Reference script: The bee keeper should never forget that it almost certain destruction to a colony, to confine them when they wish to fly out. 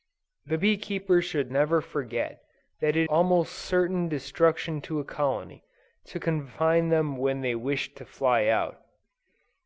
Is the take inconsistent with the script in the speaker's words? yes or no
no